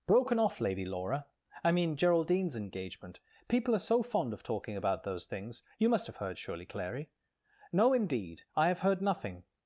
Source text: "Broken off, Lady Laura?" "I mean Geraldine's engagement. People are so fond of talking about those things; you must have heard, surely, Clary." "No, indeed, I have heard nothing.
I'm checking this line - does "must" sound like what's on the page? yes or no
yes